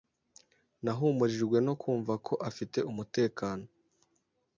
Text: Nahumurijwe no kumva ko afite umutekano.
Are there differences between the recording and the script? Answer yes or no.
no